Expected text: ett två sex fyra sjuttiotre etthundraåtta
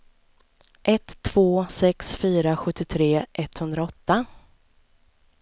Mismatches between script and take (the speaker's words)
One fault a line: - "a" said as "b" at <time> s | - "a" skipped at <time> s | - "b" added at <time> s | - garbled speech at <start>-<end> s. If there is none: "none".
none